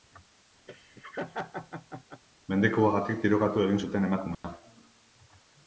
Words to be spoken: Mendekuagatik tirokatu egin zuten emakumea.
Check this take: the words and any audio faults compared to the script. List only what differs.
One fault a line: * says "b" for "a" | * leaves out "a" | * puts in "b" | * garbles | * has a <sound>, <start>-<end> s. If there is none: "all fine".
* has a laugh, 0.7-2.2 s
* has a dropout, 4.3-4.4 s